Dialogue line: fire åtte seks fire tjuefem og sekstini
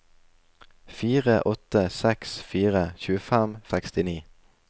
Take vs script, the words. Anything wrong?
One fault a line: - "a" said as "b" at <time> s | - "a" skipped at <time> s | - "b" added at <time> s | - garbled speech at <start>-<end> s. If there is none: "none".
none